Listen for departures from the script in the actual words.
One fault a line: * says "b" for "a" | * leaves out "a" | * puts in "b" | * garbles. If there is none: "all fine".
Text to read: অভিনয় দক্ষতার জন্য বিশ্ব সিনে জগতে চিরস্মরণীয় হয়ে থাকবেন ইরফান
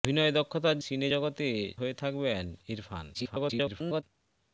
* leaves out "জন্য বিশ্ব"
* leaves out "চিরস্মরণীয়"
* garbles